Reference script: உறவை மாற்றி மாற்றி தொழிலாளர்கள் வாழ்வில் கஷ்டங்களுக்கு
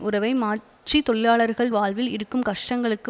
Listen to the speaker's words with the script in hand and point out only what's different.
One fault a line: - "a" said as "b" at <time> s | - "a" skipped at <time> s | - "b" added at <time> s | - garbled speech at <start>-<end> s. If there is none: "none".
- "மாற்றி" skipped at 1.0 s
- "இருக்கும்" added at 2.1 s